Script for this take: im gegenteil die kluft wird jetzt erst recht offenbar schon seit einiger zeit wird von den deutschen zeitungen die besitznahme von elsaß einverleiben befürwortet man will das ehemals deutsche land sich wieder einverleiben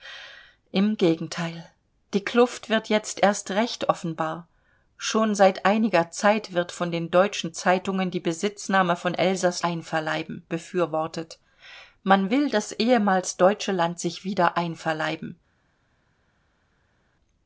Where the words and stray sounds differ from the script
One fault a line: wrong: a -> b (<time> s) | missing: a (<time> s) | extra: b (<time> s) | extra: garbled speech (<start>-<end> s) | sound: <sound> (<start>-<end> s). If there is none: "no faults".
no faults